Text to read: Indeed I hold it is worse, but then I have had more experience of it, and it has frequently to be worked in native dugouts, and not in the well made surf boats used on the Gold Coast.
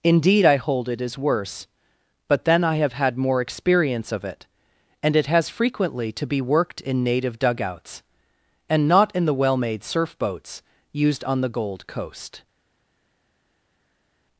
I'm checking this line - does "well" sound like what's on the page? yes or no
yes